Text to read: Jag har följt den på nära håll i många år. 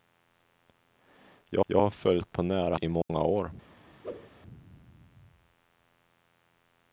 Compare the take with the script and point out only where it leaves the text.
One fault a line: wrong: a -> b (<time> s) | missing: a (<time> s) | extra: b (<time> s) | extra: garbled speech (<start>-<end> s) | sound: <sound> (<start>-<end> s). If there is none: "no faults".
extra: jag (1.7 s)
missing: den (2.3 s)
missing: håll (2.8 s)
sound: dropout (3.0-3.1 s)
sound: whoosh (4.0-4.3 s)